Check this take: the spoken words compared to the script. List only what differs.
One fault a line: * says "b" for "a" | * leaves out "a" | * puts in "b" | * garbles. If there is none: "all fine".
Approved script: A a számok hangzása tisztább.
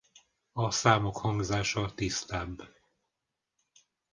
* leaves out "a"